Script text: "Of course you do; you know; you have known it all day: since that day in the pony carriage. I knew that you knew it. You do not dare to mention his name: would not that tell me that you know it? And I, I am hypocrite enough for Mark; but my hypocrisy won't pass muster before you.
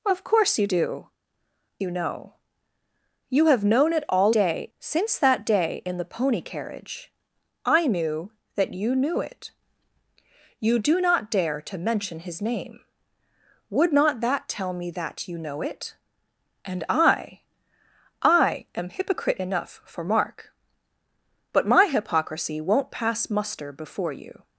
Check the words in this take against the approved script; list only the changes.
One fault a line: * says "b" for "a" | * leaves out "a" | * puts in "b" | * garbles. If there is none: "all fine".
all fine